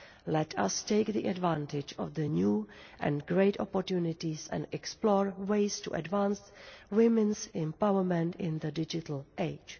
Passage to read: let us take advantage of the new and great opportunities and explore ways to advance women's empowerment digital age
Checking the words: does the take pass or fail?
fail